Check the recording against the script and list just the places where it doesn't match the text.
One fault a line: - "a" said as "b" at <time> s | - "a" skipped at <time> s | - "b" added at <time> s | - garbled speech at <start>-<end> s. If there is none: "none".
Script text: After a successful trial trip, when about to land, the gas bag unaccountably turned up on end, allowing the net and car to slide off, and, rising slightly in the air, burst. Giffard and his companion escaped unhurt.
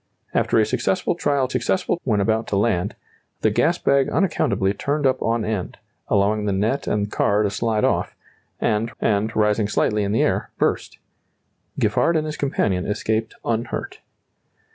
- "trip" said as "successful" at 1.5 s
- "and" added at 9.0 s